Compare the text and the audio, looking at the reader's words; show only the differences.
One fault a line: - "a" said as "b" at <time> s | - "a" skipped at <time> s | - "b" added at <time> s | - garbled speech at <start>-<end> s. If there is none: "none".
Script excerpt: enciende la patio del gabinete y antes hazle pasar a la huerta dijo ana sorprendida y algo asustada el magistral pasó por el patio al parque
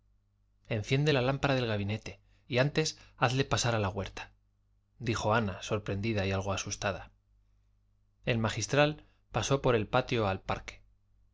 - "patio" said as "lámpara" at 1.2 s